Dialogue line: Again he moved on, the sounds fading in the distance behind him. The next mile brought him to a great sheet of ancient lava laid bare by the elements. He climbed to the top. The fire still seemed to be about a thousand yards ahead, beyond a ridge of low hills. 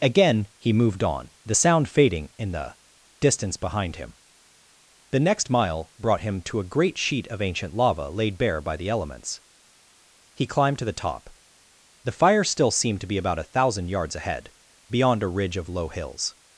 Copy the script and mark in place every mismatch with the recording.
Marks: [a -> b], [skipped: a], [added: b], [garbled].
Again he moved on, the [sounds -> sound] fading in the distance behind him. The next mile brought him to a great sheet of ancient lava laid bare by the elements. He climbed to the top. The fire still seemed to be about a thousand yards ahead, beyond a ridge of low hills.